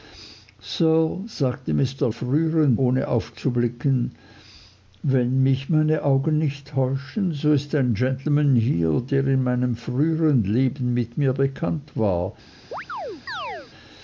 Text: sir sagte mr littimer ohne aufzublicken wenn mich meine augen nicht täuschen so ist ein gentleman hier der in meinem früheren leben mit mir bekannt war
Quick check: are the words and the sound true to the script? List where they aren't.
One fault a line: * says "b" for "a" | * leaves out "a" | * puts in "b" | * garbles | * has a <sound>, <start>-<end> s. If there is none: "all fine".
* says "früheren" for "littimer"
* has a chirp, 12.7-13.7 s